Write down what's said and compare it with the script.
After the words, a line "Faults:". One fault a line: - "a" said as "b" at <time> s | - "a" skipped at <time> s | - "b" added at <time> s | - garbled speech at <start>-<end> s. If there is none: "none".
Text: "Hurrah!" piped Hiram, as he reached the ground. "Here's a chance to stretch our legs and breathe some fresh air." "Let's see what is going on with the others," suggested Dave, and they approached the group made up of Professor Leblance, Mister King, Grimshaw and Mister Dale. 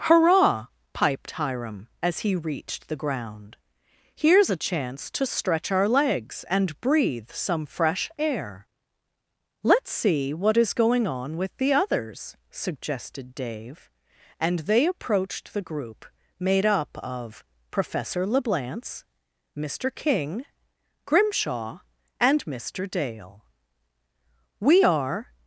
"Hurrah!" piped Hiram, as he reached the ground. "Here's a chance to stretch our legs and breathe some fresh air." "Let's see what is going on with the others," suggested Dave, and they approached the group made up of Professor Leblance, Mister King, Grimshaw and Mister Dale. "We are
Faults:
- "We are" added at 24.6 s